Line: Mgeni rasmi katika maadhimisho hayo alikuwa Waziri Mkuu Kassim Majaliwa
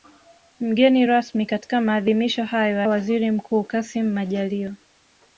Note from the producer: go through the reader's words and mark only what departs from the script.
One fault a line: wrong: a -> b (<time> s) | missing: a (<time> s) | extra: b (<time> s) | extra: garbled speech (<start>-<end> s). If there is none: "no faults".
missing: alikuwa (2.8 s)